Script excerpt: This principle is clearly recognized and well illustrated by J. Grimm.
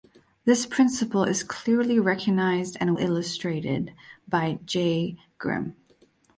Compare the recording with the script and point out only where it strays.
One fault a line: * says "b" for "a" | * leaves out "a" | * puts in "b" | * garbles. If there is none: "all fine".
* leaves out "well"